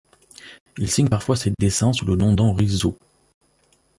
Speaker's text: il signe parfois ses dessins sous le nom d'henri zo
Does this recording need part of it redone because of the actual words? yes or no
no